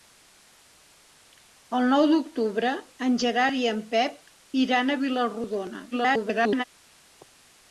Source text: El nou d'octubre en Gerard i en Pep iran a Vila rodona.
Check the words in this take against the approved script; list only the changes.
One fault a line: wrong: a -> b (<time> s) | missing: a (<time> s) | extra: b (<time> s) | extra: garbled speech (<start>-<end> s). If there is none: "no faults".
extra: garbled speech (5.9-6.6 s)